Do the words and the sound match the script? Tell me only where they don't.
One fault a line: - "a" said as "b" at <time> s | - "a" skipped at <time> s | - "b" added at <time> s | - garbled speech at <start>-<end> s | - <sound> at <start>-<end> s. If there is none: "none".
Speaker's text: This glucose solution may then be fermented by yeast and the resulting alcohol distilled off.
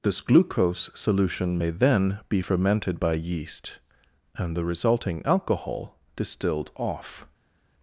none